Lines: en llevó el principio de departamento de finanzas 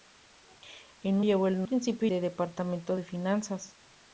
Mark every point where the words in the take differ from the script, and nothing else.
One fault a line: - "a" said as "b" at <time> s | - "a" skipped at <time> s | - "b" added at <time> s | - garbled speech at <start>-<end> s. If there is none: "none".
none